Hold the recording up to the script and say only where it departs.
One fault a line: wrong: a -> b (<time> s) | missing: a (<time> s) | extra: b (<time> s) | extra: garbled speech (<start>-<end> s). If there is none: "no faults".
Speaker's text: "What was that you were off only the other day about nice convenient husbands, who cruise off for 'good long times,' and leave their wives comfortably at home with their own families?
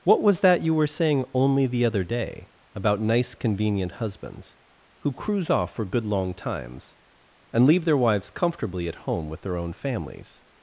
wrong: off -> saying (0.9 s)